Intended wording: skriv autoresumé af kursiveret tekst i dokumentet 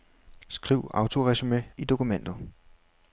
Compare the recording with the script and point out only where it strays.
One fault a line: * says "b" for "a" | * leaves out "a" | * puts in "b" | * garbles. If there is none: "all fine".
* leaves out "af kursiveret tekst"